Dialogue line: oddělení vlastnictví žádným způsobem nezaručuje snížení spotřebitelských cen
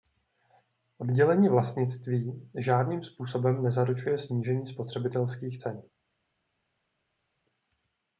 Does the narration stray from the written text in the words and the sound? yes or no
no